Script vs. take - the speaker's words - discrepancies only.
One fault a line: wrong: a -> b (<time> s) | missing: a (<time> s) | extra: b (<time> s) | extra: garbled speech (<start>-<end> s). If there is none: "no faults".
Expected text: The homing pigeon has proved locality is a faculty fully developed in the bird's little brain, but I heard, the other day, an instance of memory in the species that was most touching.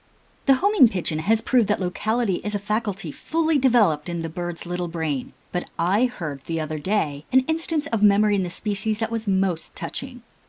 extra: that (1.7 s)